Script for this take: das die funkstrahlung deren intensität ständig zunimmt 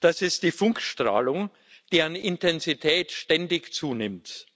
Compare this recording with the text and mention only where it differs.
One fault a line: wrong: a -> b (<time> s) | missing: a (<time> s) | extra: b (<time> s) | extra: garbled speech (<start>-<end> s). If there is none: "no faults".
extra: ist (0.2 s)